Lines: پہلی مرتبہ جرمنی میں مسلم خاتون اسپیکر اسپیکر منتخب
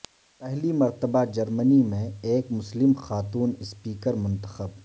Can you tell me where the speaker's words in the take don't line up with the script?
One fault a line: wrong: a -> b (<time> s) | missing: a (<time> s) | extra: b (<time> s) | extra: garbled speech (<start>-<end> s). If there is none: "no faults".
extra: ایک (2.2 s)
missing: اسپیکر (4.1 s)